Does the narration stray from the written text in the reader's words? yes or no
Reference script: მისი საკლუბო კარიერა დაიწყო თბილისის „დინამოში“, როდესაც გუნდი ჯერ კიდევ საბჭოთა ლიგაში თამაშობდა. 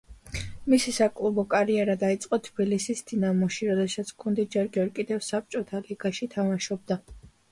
yes